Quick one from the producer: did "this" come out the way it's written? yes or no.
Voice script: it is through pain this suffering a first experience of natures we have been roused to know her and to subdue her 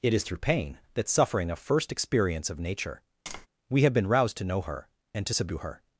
no